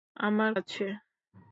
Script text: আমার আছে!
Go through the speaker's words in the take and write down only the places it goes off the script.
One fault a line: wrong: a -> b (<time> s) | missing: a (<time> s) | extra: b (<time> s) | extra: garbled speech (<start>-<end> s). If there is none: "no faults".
no faults